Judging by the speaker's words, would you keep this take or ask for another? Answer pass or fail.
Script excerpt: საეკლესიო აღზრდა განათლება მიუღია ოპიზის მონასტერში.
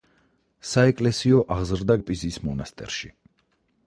fail